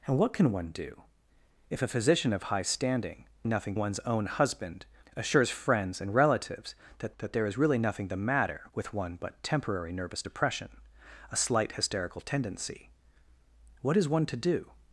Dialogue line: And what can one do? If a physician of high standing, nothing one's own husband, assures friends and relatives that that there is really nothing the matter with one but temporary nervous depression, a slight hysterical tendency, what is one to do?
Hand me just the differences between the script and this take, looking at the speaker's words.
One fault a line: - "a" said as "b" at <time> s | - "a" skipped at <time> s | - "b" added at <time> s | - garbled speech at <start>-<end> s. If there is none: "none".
none